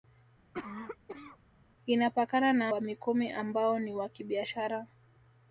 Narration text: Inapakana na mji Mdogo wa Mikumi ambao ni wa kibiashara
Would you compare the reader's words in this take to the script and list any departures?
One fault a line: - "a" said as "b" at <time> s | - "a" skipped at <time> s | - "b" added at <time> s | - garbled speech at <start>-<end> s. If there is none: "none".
- "mji Mdogo" skipped at 2.7 s